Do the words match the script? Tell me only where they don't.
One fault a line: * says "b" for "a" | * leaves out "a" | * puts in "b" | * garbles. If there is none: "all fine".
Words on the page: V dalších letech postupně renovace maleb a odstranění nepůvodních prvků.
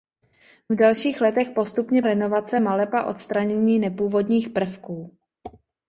all fine